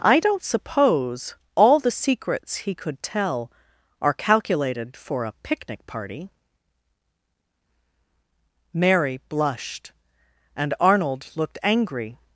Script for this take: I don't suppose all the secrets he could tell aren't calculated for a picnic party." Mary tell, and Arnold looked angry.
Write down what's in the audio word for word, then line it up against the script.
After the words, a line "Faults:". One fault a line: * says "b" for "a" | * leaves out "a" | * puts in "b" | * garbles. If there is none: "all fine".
I don't suppose all the secrets he could tell are calculated for a picnic party." Mary blushed, and Arnold looked angry.
Faults:
* says "are" for "aren't"
* says "blushed" for "tell"